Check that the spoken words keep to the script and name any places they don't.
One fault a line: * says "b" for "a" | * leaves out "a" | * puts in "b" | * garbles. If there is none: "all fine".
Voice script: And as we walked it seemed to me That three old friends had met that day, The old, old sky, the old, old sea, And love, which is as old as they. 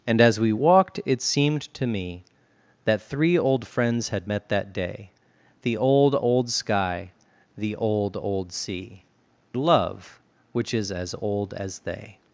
* leaves out "And"